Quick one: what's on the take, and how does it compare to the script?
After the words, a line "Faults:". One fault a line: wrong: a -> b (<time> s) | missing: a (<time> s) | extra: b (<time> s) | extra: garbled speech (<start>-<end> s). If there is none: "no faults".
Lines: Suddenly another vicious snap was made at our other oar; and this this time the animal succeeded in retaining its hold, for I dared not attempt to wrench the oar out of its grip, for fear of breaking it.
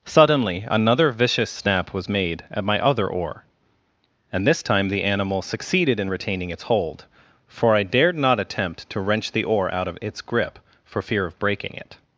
Suddenly another vicious snap was made at my other oar; and this time the animal succeeded in retaining its hold, for I dared not attempt to wrench the oar out of its grip, for fear of breaking it.
Faults:
wrong: our -> my (2.6 s)
missing: this (4.6 s)